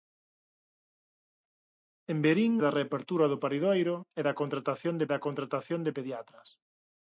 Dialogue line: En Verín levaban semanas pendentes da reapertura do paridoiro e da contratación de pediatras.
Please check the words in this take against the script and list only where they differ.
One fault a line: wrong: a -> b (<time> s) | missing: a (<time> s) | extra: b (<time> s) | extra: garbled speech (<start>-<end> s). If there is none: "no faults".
missing: levaban semanas pendentes (2.5 s)
extra: da contratación de (5.1 s)